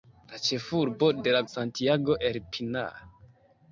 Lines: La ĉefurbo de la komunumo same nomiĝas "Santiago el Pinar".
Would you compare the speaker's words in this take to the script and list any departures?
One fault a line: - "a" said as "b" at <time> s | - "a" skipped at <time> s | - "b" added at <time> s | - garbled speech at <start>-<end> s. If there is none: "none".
- "komunumo same nomiĝas" skipped at 1.4 s